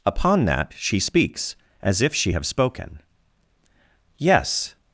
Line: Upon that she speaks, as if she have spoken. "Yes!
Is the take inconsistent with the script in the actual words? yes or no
no